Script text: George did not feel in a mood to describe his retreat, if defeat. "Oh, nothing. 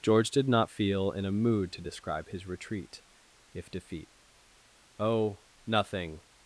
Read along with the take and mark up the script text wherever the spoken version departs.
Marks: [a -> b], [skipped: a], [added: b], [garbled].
George did not feel in a mood to describe his retreat, if defeat. "Oh, nothing.